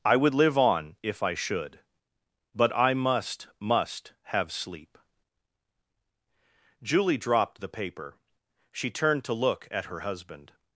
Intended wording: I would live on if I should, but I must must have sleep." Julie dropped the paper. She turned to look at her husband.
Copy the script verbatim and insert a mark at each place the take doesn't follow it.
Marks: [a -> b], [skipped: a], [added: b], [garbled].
I would live on if I should, but I must must have sleep." Julie dropped the paper. She turned to look at her husband.